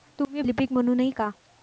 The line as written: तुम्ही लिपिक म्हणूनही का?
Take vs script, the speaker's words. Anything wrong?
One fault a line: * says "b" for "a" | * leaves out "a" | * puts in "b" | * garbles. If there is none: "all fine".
all fine